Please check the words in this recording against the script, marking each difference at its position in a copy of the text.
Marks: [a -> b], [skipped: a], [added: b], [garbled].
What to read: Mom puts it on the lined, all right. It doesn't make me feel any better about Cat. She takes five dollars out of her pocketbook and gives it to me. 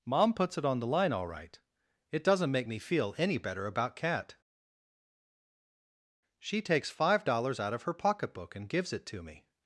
Mom puts it on the [lined, -> line] all right. It doesn't make me feel any better about Cat. She takes five dollars out of her pocketbook and gives it to me.